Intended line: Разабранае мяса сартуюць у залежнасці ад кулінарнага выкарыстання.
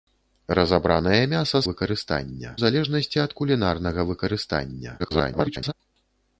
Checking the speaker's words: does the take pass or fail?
fail